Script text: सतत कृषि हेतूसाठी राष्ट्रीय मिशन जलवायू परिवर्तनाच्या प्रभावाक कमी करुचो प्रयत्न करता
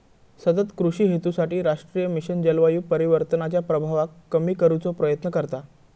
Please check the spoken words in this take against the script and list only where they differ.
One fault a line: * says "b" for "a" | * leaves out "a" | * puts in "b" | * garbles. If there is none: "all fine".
all fine